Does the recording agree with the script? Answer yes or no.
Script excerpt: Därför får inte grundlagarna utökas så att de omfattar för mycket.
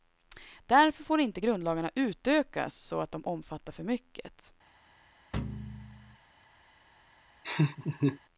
yes